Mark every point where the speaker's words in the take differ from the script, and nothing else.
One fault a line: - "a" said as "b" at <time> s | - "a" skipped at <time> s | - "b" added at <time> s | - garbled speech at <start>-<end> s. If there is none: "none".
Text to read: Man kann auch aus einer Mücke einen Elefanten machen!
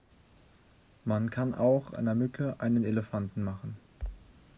- "aus" skipped at 1.9 s